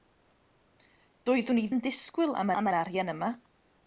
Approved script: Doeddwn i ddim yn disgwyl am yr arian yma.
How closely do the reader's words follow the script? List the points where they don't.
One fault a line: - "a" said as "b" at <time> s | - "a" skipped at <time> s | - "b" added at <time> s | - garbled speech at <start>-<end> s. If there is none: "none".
- "ddim" skipped at 1.7 s
- "am" added at 2.6 s